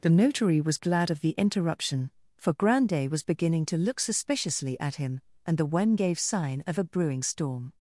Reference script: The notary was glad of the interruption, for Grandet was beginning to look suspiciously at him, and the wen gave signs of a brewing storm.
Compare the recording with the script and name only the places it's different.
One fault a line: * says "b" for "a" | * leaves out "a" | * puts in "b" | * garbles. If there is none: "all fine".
* says "sign" for "signs"